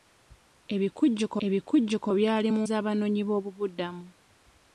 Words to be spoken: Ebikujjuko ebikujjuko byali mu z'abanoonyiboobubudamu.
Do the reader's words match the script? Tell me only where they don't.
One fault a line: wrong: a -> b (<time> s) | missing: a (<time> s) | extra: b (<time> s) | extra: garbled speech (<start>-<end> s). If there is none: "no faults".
no faults